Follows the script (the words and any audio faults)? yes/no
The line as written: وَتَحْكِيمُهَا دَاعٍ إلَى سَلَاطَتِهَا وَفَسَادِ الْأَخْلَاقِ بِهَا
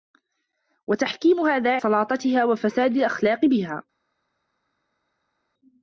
no